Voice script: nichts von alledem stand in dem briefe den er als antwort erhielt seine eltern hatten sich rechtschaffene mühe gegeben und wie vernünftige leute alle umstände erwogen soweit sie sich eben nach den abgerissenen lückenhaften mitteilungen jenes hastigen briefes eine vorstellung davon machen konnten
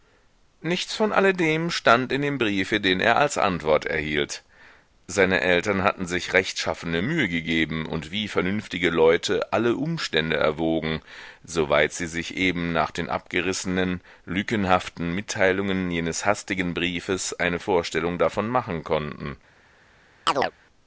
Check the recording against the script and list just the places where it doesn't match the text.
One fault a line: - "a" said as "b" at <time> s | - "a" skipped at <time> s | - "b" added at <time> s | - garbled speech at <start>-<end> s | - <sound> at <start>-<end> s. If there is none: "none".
- chirp at 20.3-20.5 s